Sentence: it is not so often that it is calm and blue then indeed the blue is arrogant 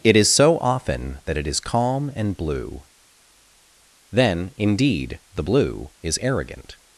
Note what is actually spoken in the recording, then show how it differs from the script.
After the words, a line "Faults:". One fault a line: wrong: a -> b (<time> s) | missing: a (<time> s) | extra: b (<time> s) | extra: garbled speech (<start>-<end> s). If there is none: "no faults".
it is so often that it is calm and blue then indeed the blue is arrogant
Faults:
missing: not (0.3 s)